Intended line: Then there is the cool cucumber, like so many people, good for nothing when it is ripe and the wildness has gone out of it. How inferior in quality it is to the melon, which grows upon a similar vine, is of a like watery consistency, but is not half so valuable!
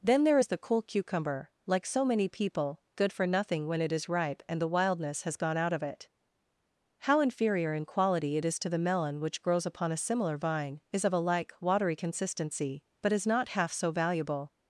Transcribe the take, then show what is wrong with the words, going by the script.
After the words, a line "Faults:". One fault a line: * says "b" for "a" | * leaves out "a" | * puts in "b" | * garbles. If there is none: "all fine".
Then there is the cool cucumber, like so many people, good for nothing when it is ripe and the wildness has gone out of it. How inferior in quality it is to the melon, which grows upon a similar vine, is of a like watery consistency, but is not half so valuable!
Faults:
all fine